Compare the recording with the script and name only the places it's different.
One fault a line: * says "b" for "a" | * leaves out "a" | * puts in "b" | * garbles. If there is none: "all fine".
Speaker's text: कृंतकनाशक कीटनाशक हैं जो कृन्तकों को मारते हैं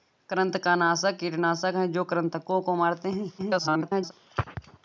* garbles